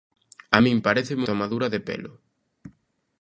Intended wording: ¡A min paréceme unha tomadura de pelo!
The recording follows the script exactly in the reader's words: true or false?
false